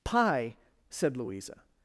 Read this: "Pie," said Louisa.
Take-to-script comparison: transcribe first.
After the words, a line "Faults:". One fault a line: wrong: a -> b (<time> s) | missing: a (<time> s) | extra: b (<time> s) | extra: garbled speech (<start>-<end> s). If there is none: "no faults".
"Pie," said Louisa.
Faults:
no faults